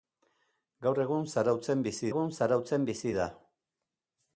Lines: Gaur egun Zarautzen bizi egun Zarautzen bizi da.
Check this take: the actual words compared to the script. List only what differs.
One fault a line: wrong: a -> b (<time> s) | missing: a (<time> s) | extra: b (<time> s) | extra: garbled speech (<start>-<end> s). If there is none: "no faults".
no faults